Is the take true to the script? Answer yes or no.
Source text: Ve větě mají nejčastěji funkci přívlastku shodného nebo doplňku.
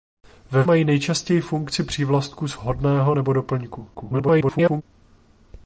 no